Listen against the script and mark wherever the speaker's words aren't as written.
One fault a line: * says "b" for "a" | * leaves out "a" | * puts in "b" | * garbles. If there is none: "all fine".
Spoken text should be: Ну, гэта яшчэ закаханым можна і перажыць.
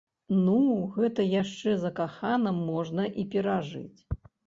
all fine